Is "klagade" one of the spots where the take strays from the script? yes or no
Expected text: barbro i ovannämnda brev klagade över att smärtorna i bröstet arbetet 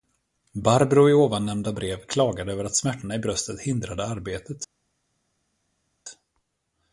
no